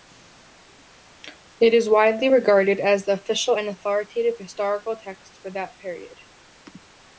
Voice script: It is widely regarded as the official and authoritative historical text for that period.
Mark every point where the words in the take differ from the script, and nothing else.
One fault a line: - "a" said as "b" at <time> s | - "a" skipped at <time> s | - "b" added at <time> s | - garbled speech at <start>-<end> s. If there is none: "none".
none